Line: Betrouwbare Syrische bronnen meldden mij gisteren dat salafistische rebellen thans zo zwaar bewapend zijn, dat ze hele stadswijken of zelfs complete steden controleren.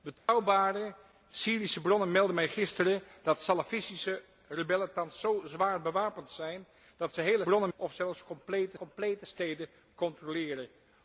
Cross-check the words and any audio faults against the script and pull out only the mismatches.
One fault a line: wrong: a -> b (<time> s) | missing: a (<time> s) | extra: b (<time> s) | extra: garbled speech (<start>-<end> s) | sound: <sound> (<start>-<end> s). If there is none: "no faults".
sound: dropout (0.2-0.3 s)
wrong: stadswijken -> bronnen (7.4 s)
extra: complete (8.7 s)